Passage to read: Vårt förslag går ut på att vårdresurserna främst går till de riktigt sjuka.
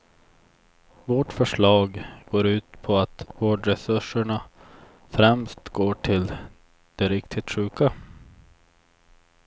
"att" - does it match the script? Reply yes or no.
yes